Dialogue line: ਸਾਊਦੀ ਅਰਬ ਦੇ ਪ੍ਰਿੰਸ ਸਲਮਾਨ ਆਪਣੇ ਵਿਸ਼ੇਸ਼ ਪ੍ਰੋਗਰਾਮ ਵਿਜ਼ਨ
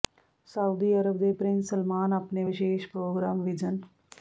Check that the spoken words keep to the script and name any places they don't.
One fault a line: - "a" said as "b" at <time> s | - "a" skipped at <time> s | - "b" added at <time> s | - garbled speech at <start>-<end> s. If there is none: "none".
none